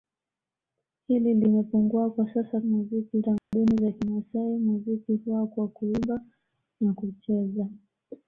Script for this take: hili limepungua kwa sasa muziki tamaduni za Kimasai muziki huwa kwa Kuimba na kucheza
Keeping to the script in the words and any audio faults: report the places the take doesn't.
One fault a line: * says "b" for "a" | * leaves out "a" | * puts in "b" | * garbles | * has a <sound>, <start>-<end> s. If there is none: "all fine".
* has a dropout, 3.4-3.5 s